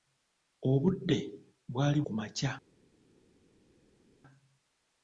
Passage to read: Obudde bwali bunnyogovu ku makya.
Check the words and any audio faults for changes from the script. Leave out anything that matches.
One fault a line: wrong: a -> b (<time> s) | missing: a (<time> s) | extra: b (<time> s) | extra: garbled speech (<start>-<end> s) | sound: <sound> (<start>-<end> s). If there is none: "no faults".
missing: bunnyogovu (2.0 s)